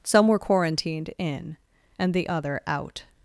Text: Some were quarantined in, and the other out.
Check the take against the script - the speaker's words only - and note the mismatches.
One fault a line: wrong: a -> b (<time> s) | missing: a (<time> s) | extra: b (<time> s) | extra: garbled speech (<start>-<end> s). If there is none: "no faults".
no faults